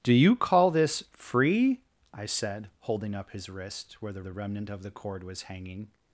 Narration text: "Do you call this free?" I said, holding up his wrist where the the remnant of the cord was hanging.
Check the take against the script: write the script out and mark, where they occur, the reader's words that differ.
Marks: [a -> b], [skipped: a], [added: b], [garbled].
"Do you call this free?" I said, holding up his wrist where the the remnant of the cord was hanging.